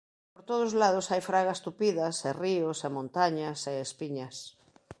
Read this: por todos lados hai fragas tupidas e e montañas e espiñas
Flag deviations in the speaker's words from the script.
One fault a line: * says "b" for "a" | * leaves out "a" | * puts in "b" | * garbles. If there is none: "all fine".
* puts in "ríos"